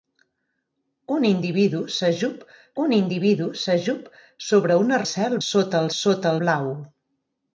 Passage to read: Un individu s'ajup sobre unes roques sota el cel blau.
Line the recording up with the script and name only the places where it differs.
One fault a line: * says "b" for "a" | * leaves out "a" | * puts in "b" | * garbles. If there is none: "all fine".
* puts in "un individu s'ajup"
* says "cel" for "roques"
* says "sota" for "cel"